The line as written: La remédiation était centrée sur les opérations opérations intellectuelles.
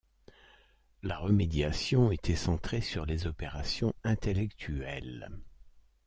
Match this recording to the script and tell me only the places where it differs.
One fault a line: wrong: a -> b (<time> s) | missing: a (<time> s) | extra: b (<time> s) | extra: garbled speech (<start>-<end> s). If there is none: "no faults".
missing: opérations (3.9 s)